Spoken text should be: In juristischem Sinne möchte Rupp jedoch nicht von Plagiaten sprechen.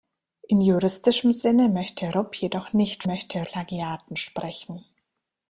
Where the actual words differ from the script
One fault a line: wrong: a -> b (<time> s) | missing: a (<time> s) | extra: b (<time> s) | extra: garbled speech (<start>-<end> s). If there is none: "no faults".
wrong: von -> möchte (3.0 s)